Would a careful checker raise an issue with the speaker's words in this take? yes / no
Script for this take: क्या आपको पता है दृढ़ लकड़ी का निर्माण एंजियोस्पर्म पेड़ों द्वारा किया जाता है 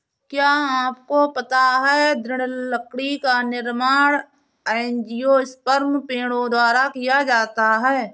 no